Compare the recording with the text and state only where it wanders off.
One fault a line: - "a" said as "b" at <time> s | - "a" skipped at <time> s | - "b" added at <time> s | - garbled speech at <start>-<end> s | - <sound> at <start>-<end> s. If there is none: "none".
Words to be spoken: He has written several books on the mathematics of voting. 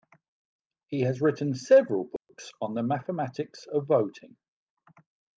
- dropout at 2.2-2.3 s